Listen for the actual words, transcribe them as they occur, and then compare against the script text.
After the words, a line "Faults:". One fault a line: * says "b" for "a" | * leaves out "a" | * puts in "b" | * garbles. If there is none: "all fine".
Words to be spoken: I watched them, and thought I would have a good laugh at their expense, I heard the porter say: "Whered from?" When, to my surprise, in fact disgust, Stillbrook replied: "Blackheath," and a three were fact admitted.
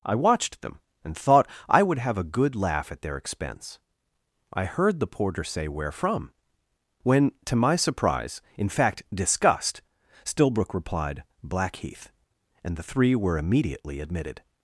I watched them, and thought I would have a good laugh at their expense, I heard the porter say: "Where from?" When, to my surprise, in fact disgust, Stillbrook replied: "Blackheath," and the three were immediately admitted.
Faults:
* says "Where" for "Whered"
* says "the" for "a"
* says "immediately" for "fact"